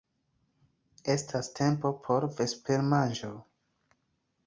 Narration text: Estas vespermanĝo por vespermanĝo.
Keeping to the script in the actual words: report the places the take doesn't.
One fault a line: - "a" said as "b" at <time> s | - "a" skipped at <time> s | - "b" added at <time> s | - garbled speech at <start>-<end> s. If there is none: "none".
- "vespermanĝo" said as "tempo" at 1.6 s